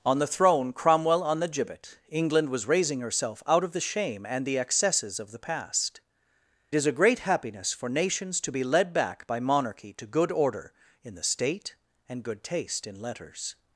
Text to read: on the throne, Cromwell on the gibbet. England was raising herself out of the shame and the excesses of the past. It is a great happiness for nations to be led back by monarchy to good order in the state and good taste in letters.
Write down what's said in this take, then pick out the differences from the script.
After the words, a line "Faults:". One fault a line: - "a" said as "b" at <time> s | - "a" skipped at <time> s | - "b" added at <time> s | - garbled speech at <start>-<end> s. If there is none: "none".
on the throne, Cromwell on the gibbet. England was raising herself out of the shame and the excesses of the past. Is a great happiness for nations to be led back by monarchy to good order in the state and good taste in letters.
Faults:
- "It" skipped at 6.0 s